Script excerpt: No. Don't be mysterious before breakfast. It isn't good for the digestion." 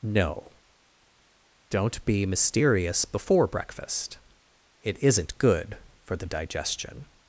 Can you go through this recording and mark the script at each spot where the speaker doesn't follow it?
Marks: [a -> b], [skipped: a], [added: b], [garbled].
No. Don't be mysterious before breakfast. It isn't good for the digestion."